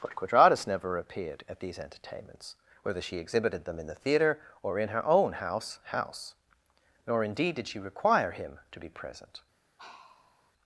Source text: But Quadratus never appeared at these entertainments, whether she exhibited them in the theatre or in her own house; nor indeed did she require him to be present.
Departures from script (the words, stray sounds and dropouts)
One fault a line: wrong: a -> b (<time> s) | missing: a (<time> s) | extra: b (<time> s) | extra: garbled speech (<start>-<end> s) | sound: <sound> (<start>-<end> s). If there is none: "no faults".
extra: house (5.8 s)
sound: sigh (9.8-10.5 s)